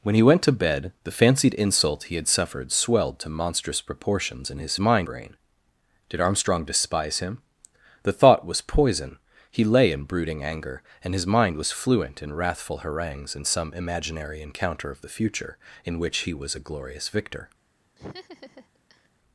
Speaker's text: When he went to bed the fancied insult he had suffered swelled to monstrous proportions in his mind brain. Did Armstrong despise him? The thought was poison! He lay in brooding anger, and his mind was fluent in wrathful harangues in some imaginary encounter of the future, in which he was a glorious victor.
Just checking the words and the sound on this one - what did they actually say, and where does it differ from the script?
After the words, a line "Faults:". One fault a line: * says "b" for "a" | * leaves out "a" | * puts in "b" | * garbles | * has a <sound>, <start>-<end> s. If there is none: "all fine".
When he went to bed the fancied insult he had suffered swelled to monstrous proportions in his mind brain. Did Armstrong despise him? The thought was poison! He lay in brooding anger, and his mind was fluent in wrathful harangues in some imaginary encounter of the future, in which he was a glorious victor.
Faults:
* has a laugh, 18.0-19.1 s